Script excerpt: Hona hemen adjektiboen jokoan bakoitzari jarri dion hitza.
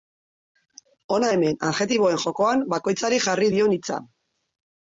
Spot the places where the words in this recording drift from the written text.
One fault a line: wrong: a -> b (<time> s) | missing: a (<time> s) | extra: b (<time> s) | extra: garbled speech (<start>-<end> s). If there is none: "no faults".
no faults